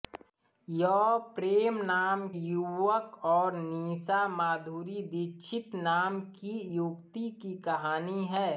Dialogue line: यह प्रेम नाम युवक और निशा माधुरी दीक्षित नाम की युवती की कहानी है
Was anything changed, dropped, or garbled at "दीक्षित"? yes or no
no